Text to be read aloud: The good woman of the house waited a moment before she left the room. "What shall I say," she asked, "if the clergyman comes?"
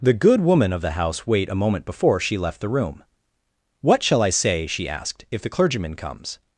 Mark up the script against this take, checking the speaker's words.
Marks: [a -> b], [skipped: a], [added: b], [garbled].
The good woman of the house [waited -> wait] a moment before she left the room. "What shall I say," she asked, "if the clergyman comes?"